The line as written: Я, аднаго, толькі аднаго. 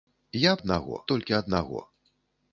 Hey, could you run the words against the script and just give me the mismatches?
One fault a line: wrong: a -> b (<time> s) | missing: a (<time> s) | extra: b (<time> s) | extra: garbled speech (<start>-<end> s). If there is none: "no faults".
no faults